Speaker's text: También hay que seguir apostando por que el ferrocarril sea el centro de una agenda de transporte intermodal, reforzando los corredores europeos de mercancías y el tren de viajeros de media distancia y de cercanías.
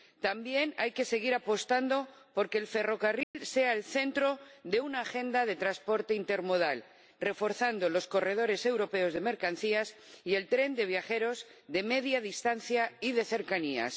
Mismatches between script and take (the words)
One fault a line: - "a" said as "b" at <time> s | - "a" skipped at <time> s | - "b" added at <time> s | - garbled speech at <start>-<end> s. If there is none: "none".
none